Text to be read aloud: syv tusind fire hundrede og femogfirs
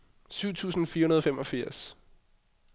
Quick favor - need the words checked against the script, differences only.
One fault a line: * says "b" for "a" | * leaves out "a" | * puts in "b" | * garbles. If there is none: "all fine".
all fine